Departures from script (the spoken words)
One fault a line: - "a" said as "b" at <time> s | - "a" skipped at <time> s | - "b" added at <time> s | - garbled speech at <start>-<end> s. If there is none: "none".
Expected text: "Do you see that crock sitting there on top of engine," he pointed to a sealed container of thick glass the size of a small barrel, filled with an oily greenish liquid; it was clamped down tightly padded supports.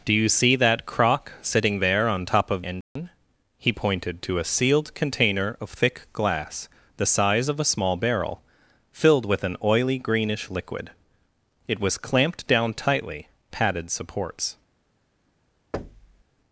none